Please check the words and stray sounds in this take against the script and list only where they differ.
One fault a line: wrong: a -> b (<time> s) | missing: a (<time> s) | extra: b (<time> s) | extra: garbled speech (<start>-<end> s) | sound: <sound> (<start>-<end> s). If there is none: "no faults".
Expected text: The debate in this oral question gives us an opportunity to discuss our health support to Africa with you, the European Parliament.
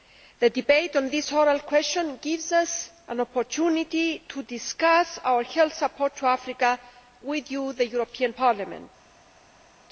wrong: in -> on (0.9 s)